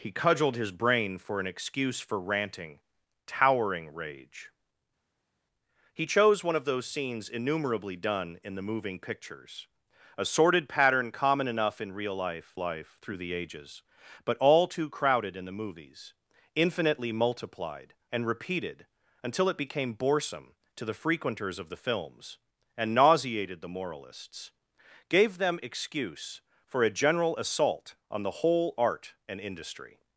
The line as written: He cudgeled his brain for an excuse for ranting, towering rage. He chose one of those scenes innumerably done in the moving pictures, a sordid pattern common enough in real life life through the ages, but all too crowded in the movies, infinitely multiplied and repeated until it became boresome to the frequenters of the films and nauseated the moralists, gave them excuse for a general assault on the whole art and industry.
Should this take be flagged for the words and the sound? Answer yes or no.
no